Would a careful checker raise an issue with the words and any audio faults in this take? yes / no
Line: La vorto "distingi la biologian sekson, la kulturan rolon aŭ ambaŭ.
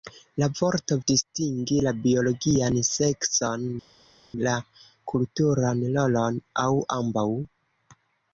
no